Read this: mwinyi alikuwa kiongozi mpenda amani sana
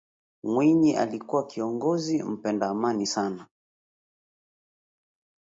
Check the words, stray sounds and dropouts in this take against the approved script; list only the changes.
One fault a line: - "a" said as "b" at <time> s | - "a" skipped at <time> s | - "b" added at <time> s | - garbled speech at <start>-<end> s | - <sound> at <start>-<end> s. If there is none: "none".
none